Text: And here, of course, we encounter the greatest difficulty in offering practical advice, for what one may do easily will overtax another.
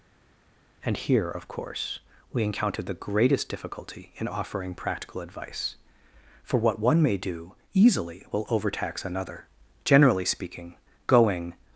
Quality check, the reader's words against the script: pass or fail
fail